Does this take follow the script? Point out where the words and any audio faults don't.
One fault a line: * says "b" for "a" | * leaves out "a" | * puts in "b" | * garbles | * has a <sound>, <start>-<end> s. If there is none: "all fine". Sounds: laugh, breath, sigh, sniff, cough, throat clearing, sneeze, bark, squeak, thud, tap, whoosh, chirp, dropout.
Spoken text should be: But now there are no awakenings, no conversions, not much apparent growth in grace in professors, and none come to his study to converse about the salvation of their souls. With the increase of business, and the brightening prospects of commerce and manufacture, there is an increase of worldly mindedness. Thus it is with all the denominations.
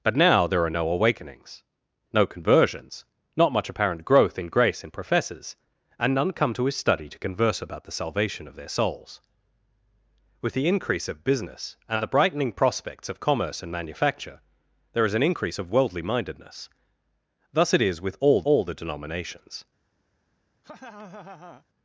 * puts in "all"
* has a laugh, 20.6-21.6 s